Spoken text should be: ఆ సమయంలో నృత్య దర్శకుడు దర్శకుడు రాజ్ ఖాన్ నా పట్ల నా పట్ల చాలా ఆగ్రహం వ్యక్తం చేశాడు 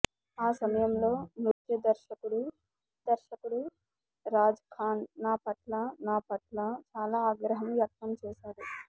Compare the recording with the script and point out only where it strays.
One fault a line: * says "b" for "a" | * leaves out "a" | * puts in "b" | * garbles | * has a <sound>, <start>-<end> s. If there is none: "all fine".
* has a dropout, 1.5-1.6 s